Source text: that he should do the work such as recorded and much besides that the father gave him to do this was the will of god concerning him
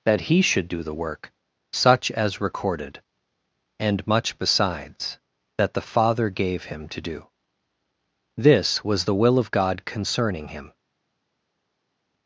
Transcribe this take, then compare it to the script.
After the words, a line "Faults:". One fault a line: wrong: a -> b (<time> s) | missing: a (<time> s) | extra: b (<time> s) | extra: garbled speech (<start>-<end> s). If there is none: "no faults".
that he should do the work such as recorded and much besides that the father gave him to do this was the will of god concerning him
Faults:
no faults